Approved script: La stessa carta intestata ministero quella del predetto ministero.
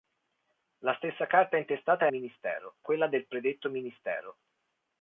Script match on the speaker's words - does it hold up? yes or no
yes